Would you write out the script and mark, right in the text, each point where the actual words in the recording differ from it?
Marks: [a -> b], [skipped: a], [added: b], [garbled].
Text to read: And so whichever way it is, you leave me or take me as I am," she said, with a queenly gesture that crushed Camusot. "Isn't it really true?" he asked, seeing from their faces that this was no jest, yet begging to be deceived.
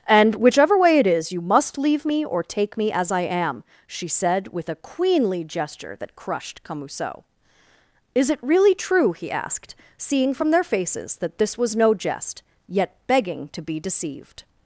And [skipped: so] whichever way it is, you [added: must] leave me or take me as I am," she said, with a queenly gesture that crushed Camusot. ["Isn't -> Is] it really true?" he asked, seeing from their faces that this was no jest, yet begging to be deceived.